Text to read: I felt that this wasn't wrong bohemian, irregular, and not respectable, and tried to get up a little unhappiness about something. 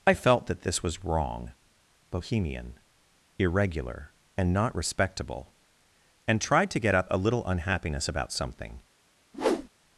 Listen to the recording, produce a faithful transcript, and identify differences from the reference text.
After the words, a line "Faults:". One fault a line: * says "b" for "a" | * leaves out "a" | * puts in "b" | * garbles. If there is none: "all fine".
I felt that this was wrong bohemian, irregular, and not respectable, and tried to get up a little unhappiness about something.
Faults:
* says "was" for "wasn't"